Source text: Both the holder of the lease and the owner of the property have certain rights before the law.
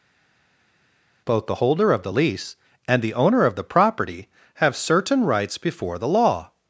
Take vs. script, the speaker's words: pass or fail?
pass